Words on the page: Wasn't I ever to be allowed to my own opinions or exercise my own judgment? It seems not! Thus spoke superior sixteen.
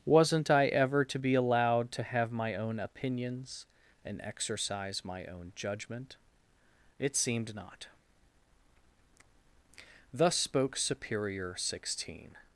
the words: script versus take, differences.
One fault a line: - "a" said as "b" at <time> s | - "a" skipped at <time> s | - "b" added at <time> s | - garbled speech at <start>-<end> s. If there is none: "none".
- "have" added at 2.0 s
- "or" said as "and" at 4.0 s
- "seems" said as "seemed" at 7.2 s